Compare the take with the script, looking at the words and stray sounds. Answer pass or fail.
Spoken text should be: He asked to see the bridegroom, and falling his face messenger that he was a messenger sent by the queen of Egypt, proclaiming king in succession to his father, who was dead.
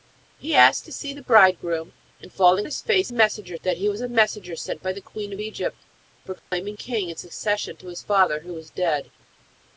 fail